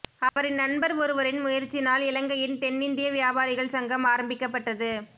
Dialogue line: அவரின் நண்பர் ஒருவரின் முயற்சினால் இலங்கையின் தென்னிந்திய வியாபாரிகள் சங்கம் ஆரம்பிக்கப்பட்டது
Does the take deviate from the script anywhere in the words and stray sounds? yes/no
yes